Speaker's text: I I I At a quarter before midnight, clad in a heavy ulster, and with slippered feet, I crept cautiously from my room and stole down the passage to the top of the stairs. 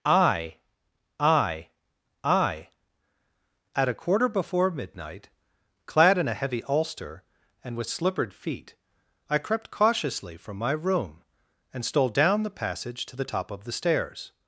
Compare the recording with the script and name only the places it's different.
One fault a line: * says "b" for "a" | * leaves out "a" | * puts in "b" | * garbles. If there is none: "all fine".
all fine